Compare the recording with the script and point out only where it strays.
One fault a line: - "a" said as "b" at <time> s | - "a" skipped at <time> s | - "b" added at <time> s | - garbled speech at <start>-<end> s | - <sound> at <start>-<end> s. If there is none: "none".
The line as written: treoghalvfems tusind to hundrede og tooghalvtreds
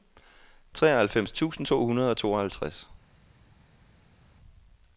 none